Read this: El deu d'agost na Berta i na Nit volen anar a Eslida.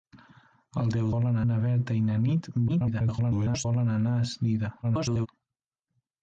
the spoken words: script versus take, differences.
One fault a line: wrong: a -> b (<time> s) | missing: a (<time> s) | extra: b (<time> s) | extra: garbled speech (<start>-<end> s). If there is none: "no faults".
wrong: d'agost -> volen (1.1 s)
extra: garbled speech (2.7-3.7 s)
extra: garbled speech (4.8-5.3 s)